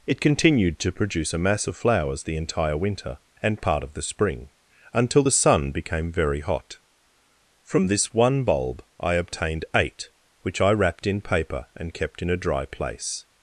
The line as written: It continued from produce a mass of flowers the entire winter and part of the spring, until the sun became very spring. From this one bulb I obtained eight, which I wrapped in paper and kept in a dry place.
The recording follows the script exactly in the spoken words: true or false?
false